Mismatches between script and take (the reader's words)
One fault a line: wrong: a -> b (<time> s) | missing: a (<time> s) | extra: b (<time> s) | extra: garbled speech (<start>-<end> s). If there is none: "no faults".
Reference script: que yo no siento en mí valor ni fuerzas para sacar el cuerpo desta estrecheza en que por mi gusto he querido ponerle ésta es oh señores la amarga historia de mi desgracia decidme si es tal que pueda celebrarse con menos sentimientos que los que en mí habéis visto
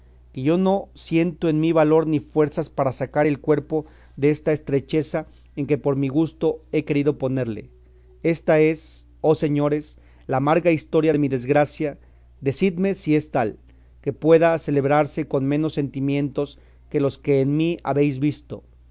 no faults